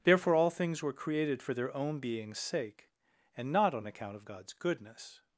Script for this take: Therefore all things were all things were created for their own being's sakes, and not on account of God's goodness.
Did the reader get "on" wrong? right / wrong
right